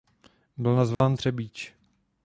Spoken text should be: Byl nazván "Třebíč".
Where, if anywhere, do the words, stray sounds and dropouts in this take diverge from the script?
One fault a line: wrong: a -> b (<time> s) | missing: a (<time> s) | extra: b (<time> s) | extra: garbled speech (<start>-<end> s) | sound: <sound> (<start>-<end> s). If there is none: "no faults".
sound: dropout (0.9-1.0 s)